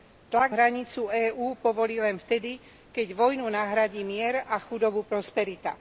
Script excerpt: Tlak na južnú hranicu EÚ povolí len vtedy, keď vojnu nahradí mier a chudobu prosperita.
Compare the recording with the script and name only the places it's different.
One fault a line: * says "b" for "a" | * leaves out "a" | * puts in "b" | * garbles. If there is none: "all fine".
* leaves out "na južnú"